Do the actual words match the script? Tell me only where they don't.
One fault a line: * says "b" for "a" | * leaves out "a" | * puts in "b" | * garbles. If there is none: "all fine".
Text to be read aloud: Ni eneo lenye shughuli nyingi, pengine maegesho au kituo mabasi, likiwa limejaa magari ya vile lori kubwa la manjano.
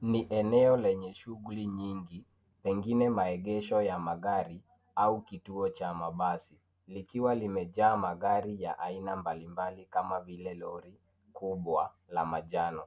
* puts in "ya magari"
* puts in "cha"
* puts in "aina mbalimbali kama"